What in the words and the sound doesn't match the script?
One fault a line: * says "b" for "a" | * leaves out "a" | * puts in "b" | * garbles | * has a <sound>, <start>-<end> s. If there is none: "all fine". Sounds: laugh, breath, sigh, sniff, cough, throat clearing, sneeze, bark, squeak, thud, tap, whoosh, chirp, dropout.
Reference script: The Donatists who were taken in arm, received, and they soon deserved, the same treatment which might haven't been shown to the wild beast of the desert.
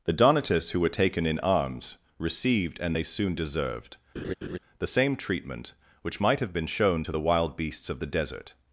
* says "arms" for "arm"
* has a laugh, 4.2-4.6 s
* says "have" for "haven't"
* says "beasts" for "beast"